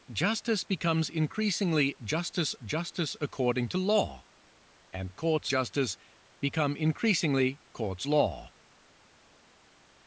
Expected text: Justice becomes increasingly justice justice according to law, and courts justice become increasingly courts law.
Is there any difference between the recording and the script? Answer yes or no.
no